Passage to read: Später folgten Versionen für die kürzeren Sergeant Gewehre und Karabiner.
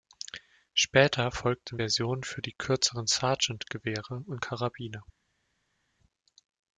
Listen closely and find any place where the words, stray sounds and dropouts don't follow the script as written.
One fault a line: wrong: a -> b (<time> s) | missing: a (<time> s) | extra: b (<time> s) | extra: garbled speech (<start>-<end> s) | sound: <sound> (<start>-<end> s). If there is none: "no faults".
no faults